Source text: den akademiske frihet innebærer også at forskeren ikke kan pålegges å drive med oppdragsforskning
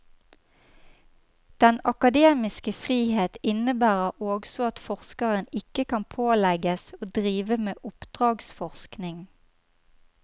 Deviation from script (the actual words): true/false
false